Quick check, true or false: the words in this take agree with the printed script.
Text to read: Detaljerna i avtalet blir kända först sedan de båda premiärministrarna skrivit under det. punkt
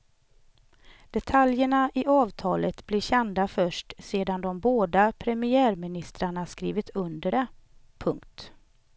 true